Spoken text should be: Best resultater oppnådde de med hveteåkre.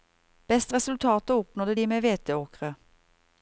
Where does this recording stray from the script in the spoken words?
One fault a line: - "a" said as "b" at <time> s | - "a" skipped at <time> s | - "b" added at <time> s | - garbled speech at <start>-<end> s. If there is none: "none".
none